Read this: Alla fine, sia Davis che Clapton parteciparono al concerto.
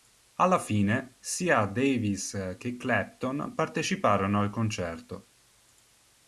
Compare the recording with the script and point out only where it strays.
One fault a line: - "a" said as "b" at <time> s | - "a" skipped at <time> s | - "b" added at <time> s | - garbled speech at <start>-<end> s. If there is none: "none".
none